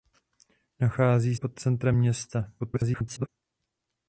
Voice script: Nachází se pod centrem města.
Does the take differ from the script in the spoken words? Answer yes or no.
yes